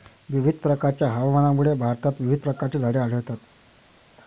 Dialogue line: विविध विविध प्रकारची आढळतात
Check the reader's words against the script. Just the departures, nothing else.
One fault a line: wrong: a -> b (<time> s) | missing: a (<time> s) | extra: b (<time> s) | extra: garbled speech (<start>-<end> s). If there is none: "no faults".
extra: प्रकारच्या हवामानामुळे भारतात (0.6 s)
extra: झाडे (2.8 s)